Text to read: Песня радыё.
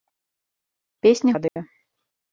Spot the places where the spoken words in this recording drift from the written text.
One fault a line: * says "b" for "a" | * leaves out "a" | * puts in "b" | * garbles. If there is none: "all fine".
all fine